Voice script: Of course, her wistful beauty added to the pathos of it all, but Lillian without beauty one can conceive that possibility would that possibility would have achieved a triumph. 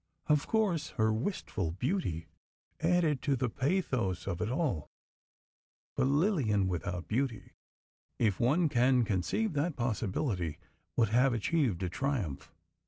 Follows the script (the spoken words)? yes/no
no